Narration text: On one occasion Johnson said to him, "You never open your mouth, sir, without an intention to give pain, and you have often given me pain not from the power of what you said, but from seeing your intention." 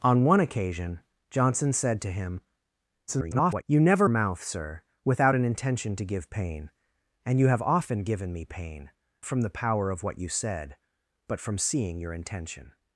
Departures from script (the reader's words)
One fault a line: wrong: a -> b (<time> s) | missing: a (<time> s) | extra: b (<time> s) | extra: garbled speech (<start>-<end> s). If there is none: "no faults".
extra: garbled speech (3.1-3.6 s)
missing: open your (4.1 s)
missing: not (8.9 s)